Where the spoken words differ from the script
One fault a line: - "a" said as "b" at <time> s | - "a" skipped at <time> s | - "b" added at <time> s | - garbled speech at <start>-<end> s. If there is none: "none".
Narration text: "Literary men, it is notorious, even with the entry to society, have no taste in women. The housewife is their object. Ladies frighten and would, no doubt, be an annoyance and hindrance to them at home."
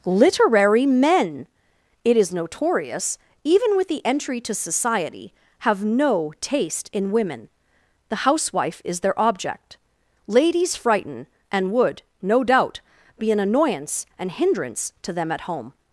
none